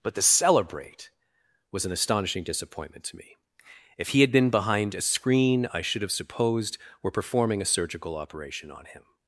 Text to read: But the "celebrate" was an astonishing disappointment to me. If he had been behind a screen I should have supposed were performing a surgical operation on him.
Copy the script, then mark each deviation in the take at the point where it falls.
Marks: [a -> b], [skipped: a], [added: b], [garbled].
But the "celebrate" was an astonishing disappointment to me. If he had been behind a screen I should have supposed were performing a surgical operation on him.